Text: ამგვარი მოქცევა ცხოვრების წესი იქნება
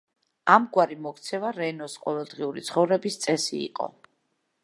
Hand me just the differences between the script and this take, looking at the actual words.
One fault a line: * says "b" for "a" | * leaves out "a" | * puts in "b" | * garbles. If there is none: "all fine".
* puts in "რენოს ყოველდღიური"
* says "იყო" for "იქნება"